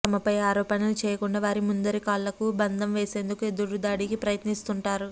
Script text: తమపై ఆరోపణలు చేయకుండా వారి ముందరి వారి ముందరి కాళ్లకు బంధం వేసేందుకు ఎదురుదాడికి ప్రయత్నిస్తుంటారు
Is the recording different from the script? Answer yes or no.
yes